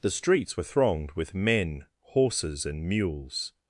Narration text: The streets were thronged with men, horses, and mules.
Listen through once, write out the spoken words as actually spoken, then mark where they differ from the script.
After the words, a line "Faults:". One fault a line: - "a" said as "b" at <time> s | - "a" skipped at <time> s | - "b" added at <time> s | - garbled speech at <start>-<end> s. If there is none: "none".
The streets were thronged with men, horses, and mules.
Faults:
none